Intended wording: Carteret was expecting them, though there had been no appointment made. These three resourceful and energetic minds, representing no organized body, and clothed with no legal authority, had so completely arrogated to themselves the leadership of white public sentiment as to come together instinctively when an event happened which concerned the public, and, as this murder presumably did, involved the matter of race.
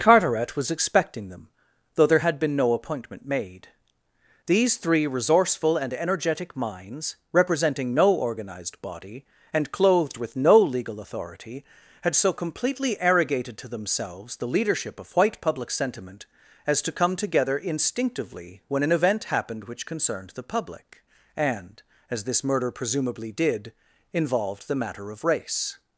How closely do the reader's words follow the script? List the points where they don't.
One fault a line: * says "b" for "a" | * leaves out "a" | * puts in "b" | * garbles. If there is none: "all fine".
all fine